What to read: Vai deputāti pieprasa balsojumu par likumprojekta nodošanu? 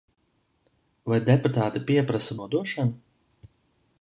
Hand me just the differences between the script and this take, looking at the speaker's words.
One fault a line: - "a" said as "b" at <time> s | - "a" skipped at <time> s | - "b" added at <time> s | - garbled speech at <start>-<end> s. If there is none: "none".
- "balsojumu par likumprojekta" skipped at 2.4 s